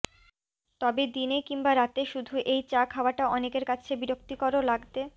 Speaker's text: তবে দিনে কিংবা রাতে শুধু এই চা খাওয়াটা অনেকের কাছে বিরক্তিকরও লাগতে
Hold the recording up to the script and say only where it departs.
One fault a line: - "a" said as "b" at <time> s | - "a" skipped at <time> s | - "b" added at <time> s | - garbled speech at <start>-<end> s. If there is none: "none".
none